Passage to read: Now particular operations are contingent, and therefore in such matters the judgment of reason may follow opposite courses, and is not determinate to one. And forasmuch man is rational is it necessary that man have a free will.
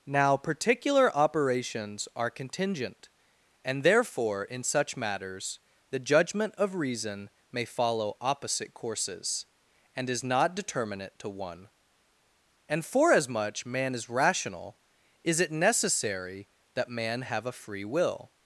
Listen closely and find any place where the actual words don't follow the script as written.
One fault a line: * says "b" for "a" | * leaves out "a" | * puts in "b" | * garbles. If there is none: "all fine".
all fine